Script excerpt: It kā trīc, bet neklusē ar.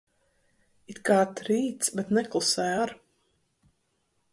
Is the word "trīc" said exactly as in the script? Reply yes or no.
yes